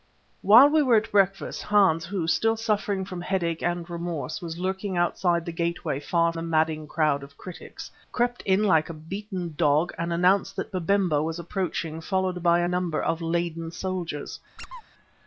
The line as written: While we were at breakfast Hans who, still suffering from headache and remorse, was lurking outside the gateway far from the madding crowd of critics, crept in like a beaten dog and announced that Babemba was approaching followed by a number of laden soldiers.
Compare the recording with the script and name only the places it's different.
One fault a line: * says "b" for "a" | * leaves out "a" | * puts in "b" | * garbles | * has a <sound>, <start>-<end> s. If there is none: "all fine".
* leaves out "from"
* has a squeak, 14.6-14.8 s